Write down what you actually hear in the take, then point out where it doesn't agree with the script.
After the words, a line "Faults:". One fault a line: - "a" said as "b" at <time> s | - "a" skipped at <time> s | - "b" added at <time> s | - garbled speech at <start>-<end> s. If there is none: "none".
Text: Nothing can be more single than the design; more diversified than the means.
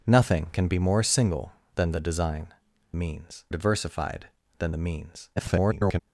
Nothing can be more single than the design; means diversified than the means. [garbled]
Faults:
- "more" said as "means" at 2.9 s
- garbled speech at 5.4-6.0 s